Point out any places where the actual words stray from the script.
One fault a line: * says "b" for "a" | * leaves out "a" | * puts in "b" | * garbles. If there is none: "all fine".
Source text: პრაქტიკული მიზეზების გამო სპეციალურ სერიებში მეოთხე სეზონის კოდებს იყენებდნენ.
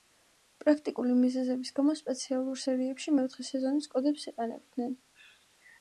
all fine